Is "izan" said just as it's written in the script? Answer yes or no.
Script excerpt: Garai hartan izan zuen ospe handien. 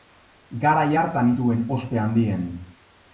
no